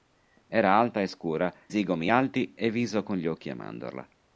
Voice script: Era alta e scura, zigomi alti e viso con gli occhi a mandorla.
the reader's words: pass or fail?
pass